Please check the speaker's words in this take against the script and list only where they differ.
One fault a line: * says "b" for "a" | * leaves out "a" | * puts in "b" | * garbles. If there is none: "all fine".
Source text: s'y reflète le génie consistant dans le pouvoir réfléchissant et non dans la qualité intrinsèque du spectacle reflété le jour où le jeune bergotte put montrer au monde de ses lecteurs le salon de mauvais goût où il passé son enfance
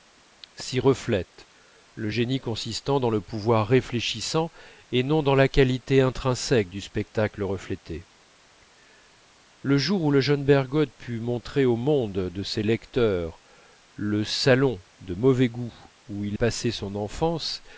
all fine